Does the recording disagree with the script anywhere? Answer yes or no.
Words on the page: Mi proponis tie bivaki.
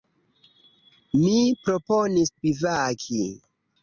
yes